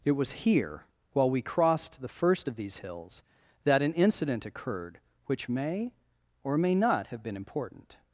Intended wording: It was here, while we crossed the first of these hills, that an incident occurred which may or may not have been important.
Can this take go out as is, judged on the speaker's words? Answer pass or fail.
pass